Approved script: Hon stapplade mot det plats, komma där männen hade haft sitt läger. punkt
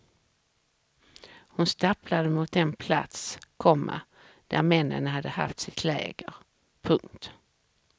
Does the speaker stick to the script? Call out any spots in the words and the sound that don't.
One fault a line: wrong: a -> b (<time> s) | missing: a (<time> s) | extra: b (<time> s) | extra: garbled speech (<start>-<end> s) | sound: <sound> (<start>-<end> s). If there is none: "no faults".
wrong: det -> den (2.5 s)